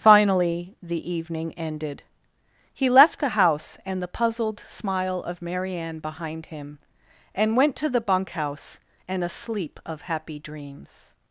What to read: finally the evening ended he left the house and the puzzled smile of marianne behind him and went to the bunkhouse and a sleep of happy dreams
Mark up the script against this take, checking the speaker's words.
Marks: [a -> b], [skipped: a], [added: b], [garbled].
finally the evening ended he left the house and the puzzled smile of marianne behind him and went to the bunkhouse and a sleep of happy dreams